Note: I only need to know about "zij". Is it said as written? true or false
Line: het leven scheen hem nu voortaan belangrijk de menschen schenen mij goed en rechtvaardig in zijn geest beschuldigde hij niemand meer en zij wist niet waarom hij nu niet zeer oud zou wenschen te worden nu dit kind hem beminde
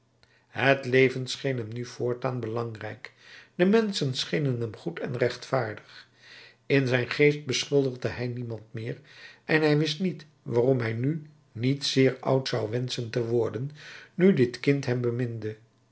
false